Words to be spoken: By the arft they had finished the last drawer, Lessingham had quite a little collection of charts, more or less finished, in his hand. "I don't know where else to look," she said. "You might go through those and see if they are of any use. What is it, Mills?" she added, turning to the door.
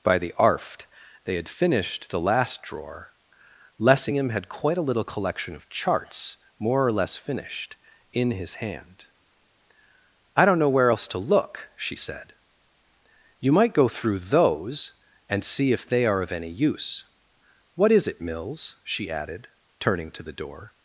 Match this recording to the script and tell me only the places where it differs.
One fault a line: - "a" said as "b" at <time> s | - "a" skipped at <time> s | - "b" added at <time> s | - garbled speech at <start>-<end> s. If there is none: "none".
none